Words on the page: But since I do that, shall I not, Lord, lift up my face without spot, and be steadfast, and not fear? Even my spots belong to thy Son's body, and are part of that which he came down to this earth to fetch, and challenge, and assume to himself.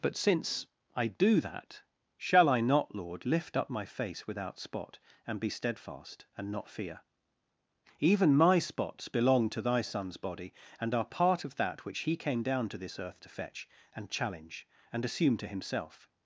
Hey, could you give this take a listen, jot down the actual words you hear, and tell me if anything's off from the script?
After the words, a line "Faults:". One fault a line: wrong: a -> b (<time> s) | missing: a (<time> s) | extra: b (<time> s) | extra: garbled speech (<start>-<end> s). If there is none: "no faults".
But since I do that, shall I not, Lord, lift up my face without spot, and be steadfast, and not fear? Even my spots belong to thy Son's body, and are part of that which he came down to this earth to fetch, and challenge, and assume to himself.
Faults:
no faults